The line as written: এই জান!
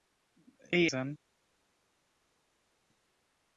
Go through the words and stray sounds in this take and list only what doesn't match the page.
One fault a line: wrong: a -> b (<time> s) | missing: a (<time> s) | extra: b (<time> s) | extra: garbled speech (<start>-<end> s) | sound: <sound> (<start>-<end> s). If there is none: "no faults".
no faults